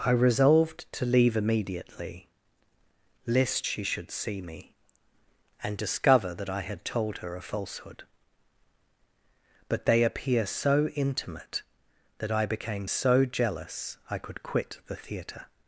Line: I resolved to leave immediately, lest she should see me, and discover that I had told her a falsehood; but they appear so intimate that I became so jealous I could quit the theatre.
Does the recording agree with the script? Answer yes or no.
yes